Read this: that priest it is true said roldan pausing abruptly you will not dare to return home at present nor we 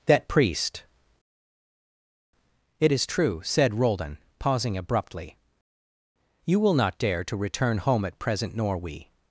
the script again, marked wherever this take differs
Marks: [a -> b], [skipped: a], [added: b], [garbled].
that priest it is true said roldan pausing abruptly you will not dare to return home at present nor we